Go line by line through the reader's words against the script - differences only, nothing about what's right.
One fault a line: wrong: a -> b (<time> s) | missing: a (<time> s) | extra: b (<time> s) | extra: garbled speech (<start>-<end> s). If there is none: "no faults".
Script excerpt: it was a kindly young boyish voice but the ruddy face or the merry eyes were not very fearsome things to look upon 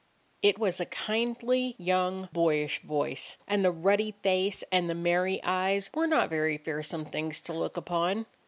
wrong: but -> and (3.5 s)
wrong: or -> and (4.7 s)